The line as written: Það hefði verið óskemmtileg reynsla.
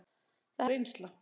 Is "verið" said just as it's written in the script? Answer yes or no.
no